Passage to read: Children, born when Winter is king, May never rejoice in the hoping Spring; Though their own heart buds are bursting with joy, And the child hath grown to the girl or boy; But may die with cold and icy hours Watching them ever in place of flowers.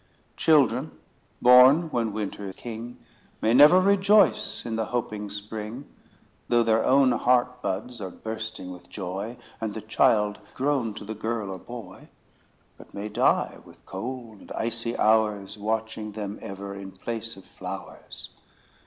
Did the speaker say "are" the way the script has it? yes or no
yes